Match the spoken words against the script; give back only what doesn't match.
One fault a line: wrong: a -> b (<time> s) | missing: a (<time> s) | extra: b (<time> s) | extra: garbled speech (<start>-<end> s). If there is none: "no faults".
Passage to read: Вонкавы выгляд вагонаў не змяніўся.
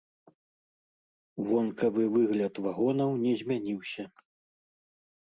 no faults